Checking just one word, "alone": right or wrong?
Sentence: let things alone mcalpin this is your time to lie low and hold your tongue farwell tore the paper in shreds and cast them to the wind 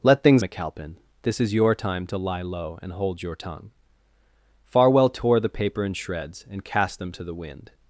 wrong